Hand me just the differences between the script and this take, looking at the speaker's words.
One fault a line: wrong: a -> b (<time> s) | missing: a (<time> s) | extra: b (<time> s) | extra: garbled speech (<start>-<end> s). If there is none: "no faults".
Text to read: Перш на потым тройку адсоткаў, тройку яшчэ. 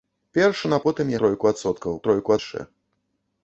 no faults